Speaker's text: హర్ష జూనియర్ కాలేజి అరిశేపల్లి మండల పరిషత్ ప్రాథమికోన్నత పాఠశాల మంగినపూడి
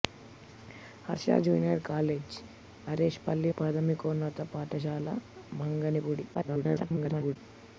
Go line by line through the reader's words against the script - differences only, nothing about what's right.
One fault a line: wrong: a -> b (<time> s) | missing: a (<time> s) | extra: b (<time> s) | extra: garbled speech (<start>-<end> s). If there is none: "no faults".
missing: మండల పరిషత్ (3.5 s)
extra: garbled speech (6.3-7.4 s)